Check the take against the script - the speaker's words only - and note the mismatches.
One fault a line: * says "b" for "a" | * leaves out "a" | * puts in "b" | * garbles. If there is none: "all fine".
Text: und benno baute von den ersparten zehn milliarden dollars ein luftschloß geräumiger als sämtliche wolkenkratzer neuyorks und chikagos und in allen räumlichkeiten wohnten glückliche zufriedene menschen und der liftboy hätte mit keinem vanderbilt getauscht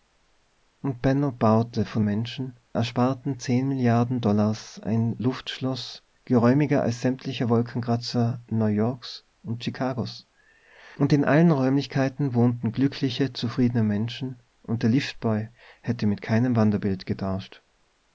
* says "menschen" for "den"